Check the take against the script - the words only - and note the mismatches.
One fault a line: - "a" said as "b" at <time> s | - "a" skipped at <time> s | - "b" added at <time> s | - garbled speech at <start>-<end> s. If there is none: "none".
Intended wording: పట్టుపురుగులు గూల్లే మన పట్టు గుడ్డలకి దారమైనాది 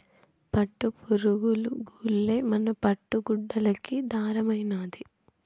none